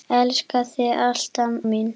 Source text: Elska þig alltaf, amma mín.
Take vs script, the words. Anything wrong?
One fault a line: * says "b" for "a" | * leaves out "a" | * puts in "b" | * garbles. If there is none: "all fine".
* leaves out "amma"